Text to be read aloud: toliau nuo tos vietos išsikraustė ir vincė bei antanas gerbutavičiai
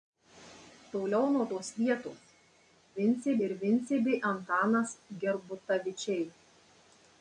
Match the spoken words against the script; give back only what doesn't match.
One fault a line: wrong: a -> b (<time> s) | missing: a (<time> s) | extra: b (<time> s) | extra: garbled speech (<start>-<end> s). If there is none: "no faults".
wrong: išsikraustė -> vincė (3.0 s)